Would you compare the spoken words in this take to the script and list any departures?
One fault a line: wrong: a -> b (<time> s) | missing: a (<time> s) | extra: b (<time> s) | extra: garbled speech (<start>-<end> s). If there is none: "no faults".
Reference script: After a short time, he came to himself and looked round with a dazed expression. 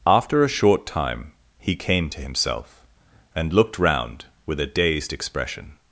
no faults